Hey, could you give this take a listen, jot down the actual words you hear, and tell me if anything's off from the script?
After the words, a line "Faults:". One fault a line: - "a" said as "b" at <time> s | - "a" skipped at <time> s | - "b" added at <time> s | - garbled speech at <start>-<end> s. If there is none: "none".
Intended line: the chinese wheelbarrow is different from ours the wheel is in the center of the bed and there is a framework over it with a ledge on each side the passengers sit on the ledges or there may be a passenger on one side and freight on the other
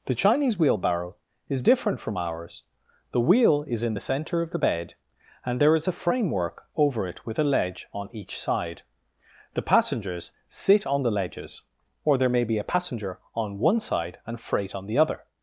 the chinese wheelbarrow is different from ours the wheel is in the center of the bed and there is a framework over it with a ledge on each side the passengers sit on the ledges or there may be a passenger on one side and freight on the other
Faults:
none